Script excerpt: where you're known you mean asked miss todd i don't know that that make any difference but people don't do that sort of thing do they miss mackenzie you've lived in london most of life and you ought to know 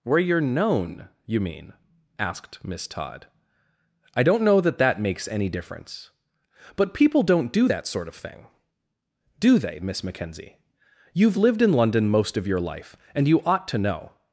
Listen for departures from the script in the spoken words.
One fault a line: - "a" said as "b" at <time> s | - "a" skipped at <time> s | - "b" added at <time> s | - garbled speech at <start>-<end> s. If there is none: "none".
- "make" said as "makes" at 5.0 s
- "your" added at 12.5 s